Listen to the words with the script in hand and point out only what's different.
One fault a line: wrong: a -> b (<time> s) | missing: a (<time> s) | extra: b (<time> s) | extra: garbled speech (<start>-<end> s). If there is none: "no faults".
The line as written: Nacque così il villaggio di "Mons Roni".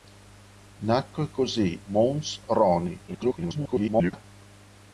missing: il villaggio di (1.8 s)
extra: garbled speech (3.1-4.2 s)